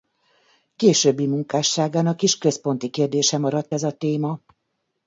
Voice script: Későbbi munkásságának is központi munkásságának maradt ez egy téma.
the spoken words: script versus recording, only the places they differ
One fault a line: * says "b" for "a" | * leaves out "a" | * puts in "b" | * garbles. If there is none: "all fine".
* says "kérdése" for "munkásságának"
* says "a" for "egy"